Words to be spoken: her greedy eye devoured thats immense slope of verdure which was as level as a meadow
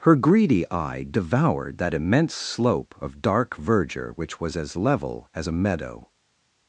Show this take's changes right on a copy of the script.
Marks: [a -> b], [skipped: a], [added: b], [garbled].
her greedy eye devoured [thats -> that] immense slope of [added: dark] verdure which was as level as a meadow